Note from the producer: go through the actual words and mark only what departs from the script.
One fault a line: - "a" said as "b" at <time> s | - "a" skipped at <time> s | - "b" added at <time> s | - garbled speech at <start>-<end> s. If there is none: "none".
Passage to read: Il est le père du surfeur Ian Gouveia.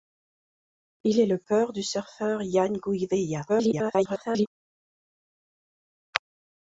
- garbled speech at 3.5-4.5 s